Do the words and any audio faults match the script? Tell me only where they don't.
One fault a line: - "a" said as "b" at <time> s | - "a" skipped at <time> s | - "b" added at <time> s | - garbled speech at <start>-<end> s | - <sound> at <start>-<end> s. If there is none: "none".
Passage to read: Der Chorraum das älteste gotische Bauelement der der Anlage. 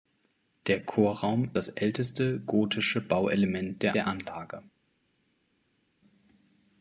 none